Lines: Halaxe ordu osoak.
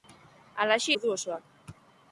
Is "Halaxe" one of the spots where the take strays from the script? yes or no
no